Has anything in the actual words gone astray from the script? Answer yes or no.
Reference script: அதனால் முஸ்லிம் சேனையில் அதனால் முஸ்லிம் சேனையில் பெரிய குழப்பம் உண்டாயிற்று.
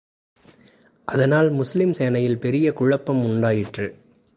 yes